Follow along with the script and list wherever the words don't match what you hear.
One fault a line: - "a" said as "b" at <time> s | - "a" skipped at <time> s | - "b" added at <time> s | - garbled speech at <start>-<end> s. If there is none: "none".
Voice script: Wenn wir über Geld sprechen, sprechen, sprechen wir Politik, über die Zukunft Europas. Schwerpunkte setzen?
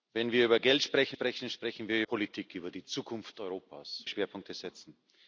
none